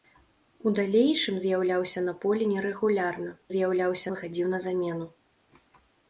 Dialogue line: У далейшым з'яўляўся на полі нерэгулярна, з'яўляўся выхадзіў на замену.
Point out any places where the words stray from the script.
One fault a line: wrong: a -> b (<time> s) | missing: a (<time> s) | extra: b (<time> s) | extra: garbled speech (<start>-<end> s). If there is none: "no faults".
no faults